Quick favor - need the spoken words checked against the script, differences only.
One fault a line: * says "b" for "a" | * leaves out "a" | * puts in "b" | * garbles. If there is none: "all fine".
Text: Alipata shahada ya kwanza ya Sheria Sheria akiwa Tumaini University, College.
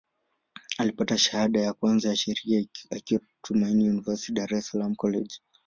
* leaves out "Sheria"
* puts in "Dar es Salaam"